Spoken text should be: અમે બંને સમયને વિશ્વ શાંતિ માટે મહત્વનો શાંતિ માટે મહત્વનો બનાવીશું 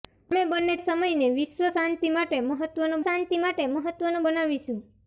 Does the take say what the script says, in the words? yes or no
yes